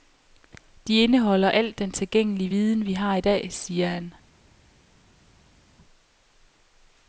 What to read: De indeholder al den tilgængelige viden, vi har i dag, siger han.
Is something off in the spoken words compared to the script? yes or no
no